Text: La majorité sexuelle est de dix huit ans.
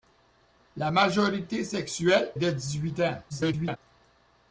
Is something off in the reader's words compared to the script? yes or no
yes